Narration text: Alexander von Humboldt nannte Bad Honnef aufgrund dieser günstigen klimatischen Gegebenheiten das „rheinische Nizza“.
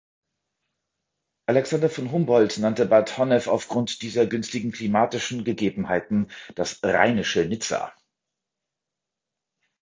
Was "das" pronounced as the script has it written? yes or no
yes